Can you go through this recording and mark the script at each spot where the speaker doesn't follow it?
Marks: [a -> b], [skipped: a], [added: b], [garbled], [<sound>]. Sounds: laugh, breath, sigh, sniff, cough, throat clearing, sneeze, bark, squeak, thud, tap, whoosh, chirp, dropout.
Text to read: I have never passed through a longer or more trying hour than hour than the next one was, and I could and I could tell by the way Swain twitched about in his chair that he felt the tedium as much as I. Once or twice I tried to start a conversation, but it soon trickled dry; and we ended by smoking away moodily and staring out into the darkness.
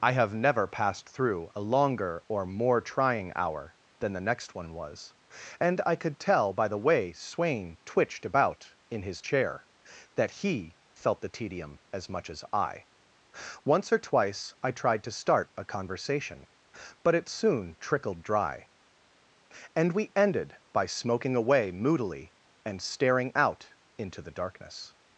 I have never passed through a longer or more trying hour than [skipped: hour than] the next one was, and I could [skipped: and I could] tell by the way Swain twitched about in his chair that he felt the tedium as much as I. Once or twice I tried to start a conversation, but it soon trickled dry; and we ended by smoking away moodily and staring out into the darkness.